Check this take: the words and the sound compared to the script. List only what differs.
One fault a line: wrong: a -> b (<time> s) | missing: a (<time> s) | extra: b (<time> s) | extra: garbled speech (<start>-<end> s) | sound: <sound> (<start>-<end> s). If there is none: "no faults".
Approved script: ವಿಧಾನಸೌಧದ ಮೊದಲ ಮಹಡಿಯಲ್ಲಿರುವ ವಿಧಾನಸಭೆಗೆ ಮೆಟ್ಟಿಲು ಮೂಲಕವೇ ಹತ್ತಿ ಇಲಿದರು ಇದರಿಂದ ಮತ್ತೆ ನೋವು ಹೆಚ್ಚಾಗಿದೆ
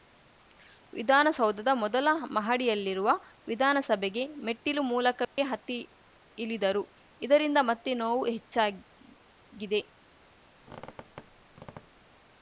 sound: dropout (5.2-5.4 s)
sound: squeak (10.6-12.1 s)